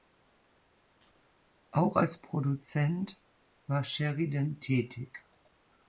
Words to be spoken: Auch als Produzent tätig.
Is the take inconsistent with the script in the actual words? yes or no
yes